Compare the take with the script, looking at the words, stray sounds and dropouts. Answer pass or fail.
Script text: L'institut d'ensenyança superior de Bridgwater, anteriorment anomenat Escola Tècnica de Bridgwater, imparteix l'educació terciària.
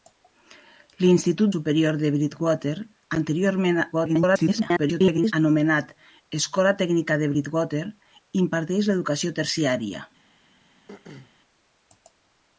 fail